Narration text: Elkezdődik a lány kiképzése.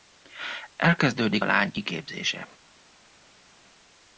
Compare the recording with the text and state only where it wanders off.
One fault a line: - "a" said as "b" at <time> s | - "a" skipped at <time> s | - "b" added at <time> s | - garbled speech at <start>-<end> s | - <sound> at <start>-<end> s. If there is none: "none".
none